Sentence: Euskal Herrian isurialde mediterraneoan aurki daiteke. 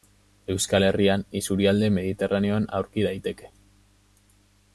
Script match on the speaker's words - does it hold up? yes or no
yes